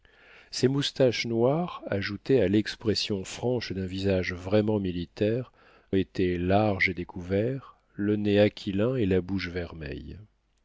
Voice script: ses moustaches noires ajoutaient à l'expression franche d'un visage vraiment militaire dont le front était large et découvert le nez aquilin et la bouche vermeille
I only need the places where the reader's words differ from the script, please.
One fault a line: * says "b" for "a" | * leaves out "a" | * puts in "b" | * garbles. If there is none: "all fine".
* leaves out "dont le front"